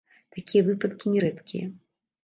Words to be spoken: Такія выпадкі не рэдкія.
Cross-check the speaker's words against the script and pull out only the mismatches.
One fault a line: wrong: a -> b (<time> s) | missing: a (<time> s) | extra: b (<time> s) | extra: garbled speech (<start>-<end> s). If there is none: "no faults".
no faults